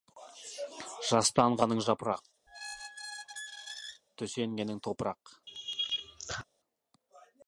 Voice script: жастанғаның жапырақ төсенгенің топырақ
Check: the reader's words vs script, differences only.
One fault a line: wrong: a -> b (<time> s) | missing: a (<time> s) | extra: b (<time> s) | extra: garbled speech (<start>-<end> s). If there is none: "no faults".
no faults